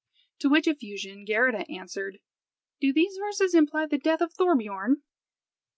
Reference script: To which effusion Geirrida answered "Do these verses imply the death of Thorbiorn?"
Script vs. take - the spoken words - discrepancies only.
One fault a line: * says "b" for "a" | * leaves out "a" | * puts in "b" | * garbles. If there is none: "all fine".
all fine